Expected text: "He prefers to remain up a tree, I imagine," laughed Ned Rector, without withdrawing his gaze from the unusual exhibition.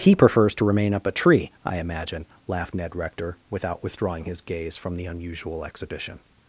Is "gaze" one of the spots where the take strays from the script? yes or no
no